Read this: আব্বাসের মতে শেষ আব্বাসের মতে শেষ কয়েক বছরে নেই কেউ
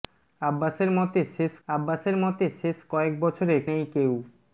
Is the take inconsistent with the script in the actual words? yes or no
no